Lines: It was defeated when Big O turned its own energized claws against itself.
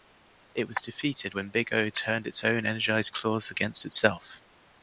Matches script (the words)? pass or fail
pass